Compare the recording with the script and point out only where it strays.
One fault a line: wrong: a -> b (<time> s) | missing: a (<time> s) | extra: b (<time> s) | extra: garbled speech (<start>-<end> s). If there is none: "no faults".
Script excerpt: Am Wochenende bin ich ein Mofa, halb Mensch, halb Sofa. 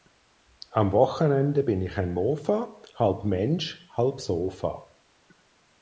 no faults